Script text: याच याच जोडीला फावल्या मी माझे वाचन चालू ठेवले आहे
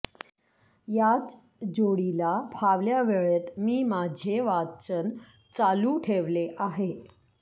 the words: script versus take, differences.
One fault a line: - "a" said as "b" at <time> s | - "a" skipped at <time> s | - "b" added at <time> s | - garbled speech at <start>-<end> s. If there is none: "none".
- "याच" skipped at 1.4 s
- "वेळेत" added at 3.0 s